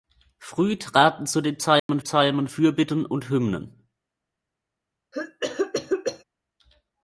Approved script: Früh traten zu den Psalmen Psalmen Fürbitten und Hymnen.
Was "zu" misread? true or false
false